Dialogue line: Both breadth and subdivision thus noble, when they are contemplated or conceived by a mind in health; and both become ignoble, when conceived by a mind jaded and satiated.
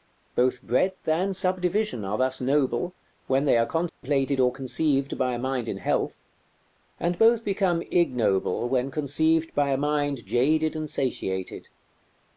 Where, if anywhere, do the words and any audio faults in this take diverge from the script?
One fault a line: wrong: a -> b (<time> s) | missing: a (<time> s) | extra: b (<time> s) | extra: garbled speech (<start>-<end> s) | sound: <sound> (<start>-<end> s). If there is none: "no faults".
extra: are (2.0 s)
sound: dropout (3.9-4.0 s)